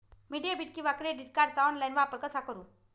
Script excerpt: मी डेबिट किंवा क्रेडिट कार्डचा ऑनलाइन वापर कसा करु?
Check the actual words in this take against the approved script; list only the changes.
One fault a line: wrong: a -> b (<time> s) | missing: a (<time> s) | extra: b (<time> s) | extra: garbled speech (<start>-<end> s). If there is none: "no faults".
no faults